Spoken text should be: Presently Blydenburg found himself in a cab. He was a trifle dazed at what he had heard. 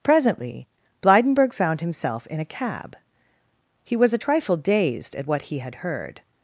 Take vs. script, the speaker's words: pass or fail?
pass